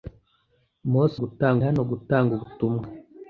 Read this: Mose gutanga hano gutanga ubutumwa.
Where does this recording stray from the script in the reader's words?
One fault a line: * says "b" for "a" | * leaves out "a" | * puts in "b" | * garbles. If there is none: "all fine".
all fine